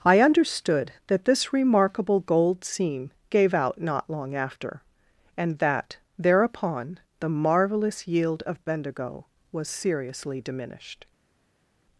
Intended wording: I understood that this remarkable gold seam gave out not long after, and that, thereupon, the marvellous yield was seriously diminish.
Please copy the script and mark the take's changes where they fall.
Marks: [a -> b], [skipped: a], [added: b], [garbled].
I understood that this remarkable gold seam gave out not long after, and that, thereupon, the marvellous yield [added: of Bendigo] was seriously [diminish. -> diminished]